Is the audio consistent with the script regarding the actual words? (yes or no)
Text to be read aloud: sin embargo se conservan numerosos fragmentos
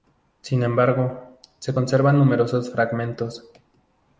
yes